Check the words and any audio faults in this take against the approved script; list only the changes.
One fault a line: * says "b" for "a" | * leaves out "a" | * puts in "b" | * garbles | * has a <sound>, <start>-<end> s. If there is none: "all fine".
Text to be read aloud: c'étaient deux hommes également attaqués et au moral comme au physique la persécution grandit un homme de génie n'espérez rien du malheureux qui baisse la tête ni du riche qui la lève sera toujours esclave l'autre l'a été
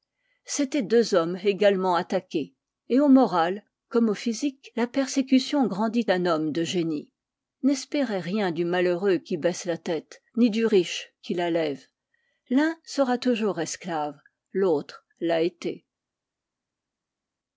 * puts in "l'un"